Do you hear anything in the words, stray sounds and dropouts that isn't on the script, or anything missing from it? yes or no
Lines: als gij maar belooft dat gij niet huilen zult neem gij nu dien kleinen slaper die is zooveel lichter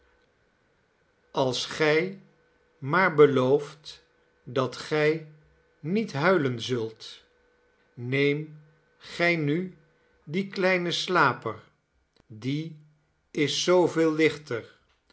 no